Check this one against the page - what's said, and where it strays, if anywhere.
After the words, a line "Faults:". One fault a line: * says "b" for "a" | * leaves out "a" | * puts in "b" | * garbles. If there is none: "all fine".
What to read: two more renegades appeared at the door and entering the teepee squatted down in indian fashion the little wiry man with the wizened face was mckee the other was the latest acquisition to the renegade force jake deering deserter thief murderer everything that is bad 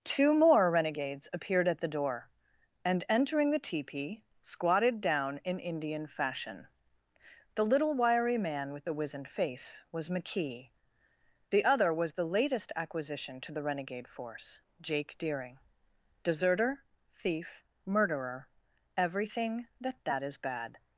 two more renegades appeared at the door and entering the teepee squatted down in indian fashion the little wiry man with the wizened face was mckee the other was the latest acquisition to the renegade force jake deering deserter thief murderer everything that that is bad
Faults:
* puts in "that"